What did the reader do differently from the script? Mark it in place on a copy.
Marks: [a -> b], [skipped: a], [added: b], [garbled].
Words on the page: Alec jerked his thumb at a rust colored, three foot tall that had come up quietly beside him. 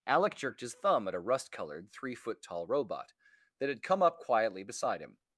Alec jerked his thumb at a rust colored, three foot tall [added: robot] that had come up quietly beside him.